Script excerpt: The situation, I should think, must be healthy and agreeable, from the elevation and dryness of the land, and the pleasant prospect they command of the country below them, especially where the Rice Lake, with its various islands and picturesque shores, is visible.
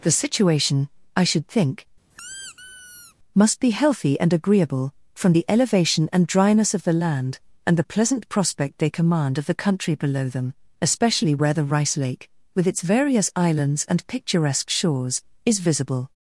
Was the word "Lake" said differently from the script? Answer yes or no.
no